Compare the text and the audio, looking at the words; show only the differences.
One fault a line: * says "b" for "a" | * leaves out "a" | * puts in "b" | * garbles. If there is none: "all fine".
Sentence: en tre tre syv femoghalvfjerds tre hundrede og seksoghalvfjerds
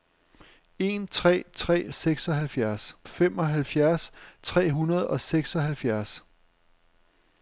* says "seksoghalvfjerds" for "syv"